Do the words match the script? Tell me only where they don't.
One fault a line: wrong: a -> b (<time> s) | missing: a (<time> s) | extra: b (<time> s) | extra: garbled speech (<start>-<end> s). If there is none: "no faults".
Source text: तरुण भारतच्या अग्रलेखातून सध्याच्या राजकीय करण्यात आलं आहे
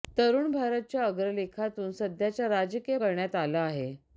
no faults